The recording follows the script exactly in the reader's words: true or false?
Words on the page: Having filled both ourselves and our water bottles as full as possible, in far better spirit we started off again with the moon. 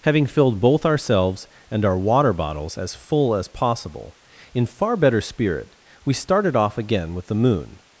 true